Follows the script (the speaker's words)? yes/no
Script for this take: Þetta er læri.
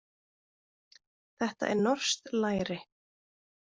no